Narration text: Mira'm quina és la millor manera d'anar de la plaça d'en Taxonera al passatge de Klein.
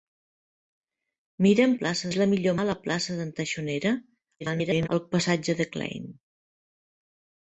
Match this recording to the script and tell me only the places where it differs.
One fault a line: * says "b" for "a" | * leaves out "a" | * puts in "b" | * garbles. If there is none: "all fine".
* says "plaça" for "quina"
* leaves out "manera d'anar"
* garbles